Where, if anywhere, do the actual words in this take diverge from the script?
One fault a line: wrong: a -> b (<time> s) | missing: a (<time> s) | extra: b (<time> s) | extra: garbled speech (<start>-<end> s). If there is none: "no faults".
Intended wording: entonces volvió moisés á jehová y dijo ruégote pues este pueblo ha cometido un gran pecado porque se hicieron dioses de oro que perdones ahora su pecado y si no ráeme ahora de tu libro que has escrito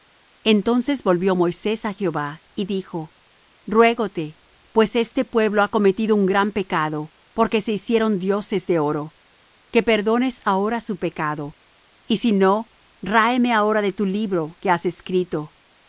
no faults